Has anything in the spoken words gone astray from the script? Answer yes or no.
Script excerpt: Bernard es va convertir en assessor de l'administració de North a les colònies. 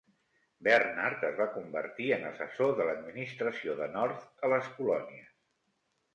no